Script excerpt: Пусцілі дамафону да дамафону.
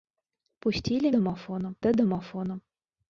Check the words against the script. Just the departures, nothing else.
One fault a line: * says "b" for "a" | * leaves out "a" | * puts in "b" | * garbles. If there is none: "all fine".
all fine